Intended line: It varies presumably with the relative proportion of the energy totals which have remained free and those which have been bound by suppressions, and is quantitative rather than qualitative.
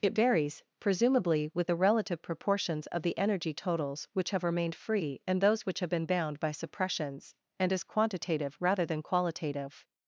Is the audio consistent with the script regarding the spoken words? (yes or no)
no